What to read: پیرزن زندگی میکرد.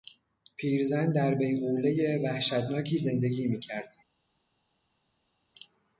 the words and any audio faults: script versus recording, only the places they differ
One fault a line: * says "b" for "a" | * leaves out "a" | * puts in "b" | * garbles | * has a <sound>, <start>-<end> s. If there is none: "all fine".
* puts in "در بیغولهی وحشتناکی"